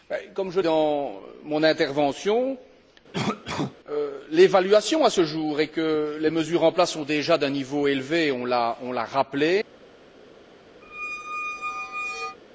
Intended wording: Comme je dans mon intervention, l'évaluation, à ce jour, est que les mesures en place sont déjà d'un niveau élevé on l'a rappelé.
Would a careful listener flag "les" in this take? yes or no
no